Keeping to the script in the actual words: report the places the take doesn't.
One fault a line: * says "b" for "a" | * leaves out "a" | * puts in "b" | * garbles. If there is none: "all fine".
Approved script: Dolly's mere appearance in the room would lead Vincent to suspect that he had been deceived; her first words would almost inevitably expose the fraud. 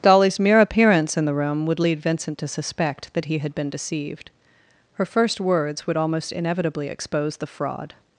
all fine